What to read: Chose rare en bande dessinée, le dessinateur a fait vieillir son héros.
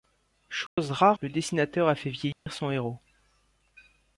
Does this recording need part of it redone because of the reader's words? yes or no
yes